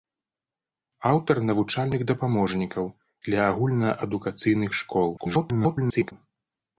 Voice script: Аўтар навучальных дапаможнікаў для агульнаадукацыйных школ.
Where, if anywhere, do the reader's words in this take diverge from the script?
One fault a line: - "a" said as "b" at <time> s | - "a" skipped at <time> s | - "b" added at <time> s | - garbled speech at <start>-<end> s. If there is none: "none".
- garbled speech at 5.2-6.1 s